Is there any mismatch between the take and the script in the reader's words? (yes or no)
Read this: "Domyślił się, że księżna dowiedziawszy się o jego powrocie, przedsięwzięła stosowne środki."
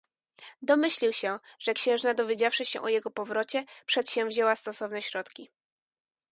no